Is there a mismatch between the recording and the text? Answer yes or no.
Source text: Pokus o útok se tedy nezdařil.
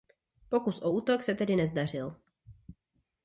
no